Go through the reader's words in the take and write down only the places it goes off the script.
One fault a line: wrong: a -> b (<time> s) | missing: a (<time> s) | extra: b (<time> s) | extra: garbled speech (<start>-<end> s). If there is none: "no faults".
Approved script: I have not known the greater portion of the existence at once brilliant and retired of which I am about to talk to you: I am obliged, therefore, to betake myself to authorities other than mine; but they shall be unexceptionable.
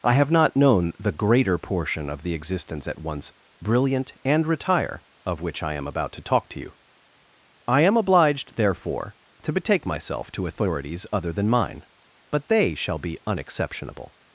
wrong: retired -> retire (4.5 s)